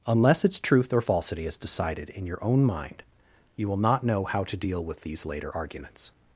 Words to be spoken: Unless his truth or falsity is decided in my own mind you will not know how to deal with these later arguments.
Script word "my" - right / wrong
wrong